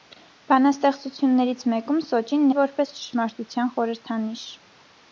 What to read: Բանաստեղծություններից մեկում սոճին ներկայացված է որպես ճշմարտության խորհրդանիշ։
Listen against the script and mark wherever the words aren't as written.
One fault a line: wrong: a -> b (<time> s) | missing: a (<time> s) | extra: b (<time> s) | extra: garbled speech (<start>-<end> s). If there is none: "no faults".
missing: ներկայացված (2.5 s)